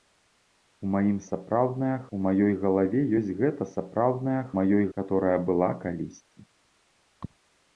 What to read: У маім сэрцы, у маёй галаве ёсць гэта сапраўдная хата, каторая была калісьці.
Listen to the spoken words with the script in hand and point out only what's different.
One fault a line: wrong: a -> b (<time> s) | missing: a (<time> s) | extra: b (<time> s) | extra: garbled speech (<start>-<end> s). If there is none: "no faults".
wrong: сэрцы -> сапраўдная (1.3 s)
wrong: хата -> маёй (4.6 s)